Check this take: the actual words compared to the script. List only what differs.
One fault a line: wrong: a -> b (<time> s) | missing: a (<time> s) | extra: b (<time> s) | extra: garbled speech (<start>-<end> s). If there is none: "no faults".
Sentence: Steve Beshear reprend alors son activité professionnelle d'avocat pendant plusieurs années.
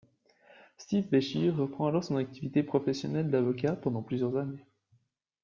no faults